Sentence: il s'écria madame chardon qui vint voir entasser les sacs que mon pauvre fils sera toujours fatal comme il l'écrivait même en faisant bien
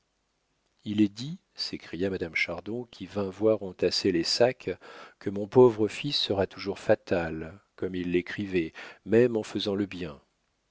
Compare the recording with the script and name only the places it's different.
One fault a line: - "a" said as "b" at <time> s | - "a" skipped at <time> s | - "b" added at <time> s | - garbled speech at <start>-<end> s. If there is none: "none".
- "est dit" added at 1.0 s
- "le" added at 9.7 s